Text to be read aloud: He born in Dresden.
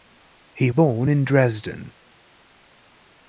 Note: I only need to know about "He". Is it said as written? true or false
true